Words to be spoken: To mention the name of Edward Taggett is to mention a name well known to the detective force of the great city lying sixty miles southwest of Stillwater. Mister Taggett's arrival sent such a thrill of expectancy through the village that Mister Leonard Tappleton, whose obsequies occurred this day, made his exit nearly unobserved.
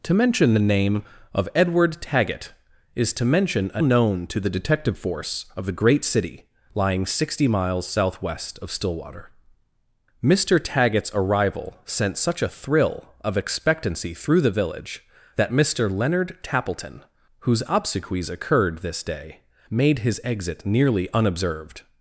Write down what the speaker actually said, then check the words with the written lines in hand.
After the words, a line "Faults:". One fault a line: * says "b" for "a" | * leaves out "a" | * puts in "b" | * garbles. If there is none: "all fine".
To mention the name of Edward Taggett is to mention a known to the detective force of the great city lying sixty miles southwest of Stillwater. Mister Taggett's arrival sent such a thrill of expectancy through the village that Mister Leonard Tappleton, whose obsequies occurred this day, made his exit nearly unobserved.
Faults:
* leaves out "name well"